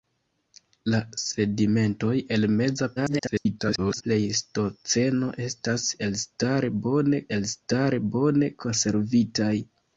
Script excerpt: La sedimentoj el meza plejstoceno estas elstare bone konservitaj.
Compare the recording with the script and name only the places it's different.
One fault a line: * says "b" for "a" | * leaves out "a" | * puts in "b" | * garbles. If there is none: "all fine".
* garbles
* puts in "elstare bone"